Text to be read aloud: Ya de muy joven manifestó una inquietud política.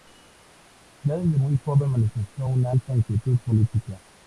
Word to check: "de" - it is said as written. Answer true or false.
false